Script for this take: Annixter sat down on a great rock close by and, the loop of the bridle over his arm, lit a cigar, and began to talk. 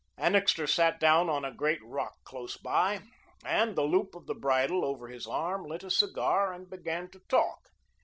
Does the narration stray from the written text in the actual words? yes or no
no